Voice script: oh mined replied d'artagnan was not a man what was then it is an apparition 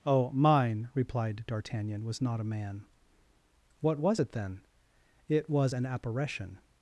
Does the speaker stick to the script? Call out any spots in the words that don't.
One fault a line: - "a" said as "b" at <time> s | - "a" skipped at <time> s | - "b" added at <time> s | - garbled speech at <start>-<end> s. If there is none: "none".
- "mined" said as "mine" at 0.3 s
- "it" added at 4.2 s
- "is" said as "was" at 5.5 s